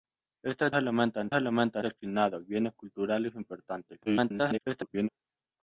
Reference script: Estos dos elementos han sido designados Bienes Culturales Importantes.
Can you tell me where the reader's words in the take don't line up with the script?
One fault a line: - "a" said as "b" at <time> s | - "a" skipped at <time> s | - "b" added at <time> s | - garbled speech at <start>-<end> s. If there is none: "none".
- "dos" skipped at 0.7 s
- "sido" said as "elementos" at 1.3 s
- garbled speech at 4.1-5.1 s